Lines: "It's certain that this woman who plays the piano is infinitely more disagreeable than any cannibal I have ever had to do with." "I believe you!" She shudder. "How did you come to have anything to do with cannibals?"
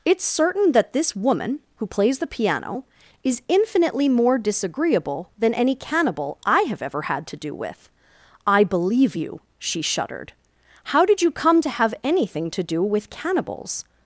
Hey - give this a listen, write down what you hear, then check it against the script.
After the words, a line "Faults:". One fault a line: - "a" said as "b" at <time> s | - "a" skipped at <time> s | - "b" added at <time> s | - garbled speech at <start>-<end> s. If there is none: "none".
"It's certain that this woman who plays the piano is infinitely more disagreeable than any cannibal I have ever had to do with." "I believe you!" She shuddered. "How did you come to have anything to do with cannibals?"
Faults:
- "shudder" said as "shuddered" at 9.8 s